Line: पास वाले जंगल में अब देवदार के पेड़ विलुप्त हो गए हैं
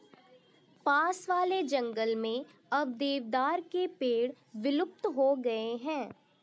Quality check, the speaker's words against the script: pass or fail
pass